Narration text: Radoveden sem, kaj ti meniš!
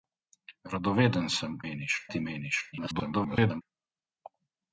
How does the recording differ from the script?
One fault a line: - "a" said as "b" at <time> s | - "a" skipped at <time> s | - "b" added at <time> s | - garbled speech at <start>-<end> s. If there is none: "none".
- "kaj" said as "meniš" at 1.7 s
- garbled speech at 2.7-3.6 s